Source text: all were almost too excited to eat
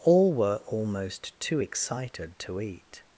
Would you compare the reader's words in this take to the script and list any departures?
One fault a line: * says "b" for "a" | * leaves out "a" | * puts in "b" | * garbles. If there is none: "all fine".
all fine